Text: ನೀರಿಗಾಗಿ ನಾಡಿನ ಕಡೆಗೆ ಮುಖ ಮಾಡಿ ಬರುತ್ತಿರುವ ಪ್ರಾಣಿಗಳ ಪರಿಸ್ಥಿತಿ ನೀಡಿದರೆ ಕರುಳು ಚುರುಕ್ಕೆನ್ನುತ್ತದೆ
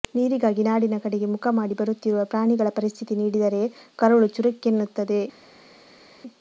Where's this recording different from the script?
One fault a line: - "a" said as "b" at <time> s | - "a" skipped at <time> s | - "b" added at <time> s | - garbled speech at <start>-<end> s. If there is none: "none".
none